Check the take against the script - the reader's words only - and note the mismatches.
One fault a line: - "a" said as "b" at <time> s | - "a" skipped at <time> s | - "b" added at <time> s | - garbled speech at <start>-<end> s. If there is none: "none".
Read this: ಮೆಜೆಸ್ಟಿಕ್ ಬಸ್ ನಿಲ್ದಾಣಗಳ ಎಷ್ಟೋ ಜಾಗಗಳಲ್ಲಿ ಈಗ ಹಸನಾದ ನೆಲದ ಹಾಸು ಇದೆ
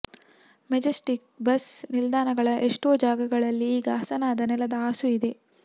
none